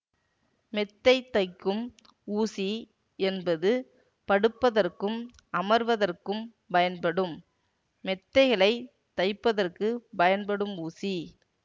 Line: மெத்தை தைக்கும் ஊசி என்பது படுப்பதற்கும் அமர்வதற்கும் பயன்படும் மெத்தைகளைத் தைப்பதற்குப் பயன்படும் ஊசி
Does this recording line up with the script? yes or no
yes